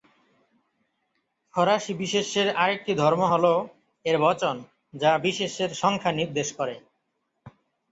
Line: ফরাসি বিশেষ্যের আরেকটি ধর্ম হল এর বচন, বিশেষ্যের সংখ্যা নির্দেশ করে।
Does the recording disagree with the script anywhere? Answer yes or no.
yes